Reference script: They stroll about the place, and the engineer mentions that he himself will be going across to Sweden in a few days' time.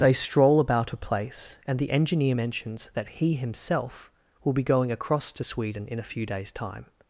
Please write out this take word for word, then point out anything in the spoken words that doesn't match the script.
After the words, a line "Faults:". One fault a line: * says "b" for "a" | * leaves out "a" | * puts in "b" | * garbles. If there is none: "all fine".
They stroll about a place, and the engineer mentions that he himself will be going across to Sweden in a few days' time.
Faults:
* says "a" for "the"